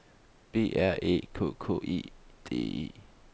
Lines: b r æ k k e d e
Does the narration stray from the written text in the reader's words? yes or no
no